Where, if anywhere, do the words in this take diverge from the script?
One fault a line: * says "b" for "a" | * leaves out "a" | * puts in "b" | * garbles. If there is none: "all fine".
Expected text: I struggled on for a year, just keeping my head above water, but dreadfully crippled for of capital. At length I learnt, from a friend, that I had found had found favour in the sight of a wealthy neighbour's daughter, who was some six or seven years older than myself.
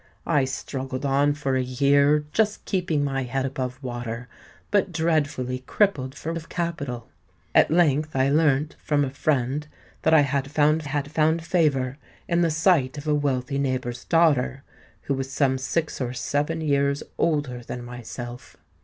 all fine